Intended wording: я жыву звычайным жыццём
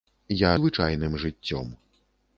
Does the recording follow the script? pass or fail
fail